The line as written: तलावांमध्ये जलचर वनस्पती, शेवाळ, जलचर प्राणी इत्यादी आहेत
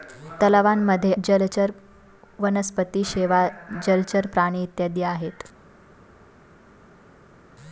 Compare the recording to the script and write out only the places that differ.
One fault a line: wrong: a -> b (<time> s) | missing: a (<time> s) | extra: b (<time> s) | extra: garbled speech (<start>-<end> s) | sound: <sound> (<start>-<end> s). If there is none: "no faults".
no faults